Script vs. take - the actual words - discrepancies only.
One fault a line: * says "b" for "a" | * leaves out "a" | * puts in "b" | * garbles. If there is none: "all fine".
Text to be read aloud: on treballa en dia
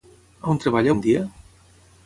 all fine